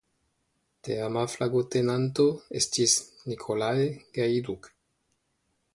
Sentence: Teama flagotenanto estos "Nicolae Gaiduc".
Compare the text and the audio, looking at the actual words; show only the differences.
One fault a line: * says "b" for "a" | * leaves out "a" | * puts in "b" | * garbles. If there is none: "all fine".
* says "estis" for "estos"